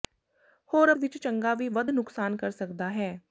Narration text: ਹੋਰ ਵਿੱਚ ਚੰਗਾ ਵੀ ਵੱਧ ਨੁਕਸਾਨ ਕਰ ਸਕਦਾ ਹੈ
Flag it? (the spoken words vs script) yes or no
no